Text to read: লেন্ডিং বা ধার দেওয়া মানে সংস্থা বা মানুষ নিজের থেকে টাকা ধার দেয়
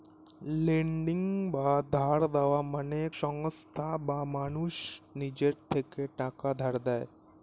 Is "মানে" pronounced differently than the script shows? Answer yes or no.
no